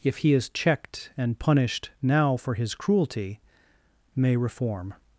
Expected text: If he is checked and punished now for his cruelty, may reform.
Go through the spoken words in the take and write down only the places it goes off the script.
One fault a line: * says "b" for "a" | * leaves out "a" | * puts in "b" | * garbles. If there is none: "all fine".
all fine